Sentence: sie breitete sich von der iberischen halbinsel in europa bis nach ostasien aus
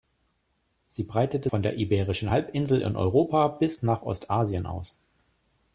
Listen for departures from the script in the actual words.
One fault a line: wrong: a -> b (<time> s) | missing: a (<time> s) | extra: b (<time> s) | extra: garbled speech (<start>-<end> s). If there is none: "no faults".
missing: sich (1.5 s)